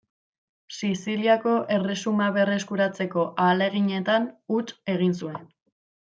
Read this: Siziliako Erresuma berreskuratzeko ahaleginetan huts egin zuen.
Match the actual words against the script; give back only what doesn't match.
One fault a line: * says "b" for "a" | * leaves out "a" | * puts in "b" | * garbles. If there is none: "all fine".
all fine